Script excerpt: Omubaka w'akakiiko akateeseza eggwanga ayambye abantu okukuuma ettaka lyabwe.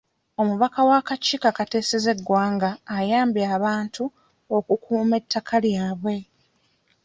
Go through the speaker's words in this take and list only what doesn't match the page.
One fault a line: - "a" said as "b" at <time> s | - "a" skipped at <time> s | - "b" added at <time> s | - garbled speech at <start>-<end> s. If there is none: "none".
none